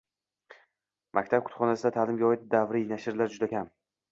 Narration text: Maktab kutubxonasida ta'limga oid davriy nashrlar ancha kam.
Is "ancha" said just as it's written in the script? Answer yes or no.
no